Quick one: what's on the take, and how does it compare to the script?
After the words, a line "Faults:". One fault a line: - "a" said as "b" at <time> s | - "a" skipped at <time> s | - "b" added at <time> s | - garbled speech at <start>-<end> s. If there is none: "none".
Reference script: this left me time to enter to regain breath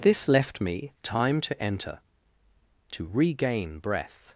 this left me time to enter to regain breath
Faults:
none